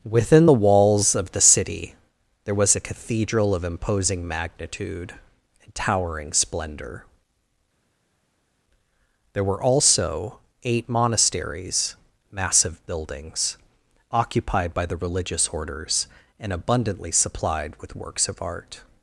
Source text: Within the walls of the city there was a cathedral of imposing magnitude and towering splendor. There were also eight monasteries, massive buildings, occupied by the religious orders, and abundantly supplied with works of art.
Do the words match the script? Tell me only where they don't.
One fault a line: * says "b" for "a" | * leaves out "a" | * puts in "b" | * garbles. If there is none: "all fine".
all fine